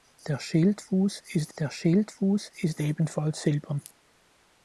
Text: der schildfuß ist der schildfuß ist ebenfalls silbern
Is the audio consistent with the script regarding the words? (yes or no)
yes